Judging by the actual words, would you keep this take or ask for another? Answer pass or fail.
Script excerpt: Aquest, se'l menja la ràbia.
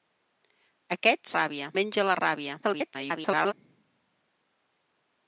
fail